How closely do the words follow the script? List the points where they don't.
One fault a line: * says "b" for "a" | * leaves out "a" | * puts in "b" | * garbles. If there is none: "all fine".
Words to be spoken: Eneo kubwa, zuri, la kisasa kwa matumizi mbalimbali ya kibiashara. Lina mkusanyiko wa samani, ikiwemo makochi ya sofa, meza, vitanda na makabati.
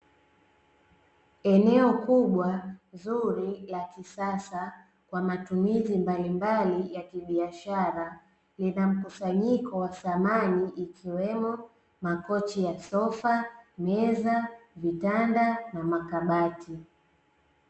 all fine